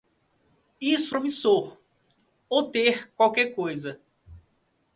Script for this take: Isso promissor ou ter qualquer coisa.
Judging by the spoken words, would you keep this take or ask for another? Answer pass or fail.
pass